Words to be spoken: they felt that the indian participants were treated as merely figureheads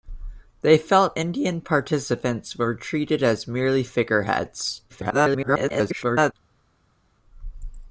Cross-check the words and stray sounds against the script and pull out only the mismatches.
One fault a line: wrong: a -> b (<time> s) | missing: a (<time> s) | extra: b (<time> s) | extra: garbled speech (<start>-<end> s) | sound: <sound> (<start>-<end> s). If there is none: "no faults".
missing: that the (1.2 s)
extra: garbled speech (4.9-6.3 s)